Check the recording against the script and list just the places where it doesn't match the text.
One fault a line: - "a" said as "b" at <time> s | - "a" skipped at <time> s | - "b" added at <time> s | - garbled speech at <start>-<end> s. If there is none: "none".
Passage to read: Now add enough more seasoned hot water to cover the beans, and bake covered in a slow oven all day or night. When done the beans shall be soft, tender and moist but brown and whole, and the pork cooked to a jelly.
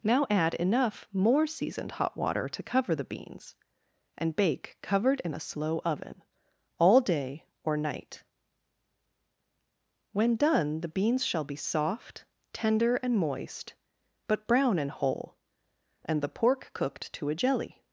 none